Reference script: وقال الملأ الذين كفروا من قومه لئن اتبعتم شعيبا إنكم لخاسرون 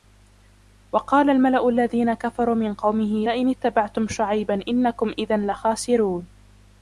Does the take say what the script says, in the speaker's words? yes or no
no